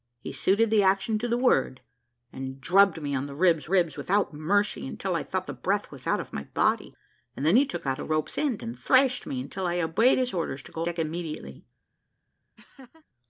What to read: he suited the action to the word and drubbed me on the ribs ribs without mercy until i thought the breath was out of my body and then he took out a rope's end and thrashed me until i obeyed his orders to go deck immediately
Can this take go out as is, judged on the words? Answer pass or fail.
pass